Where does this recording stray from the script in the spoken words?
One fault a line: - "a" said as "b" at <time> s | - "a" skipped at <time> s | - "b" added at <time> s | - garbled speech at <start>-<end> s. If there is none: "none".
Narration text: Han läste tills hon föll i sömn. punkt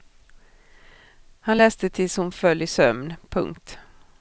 none